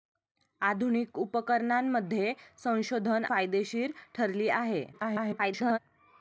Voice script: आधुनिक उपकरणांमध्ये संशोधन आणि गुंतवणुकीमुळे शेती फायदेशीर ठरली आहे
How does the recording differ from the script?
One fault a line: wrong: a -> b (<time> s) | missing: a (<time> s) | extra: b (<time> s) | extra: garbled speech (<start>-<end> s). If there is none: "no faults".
missing: आणि गुंतवणुकीमुळे शेती (3.2 s)
extra: garbled speech (4.9-5.8 s)